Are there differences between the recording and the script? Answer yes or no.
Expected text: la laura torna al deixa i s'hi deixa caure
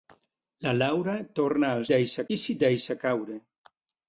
no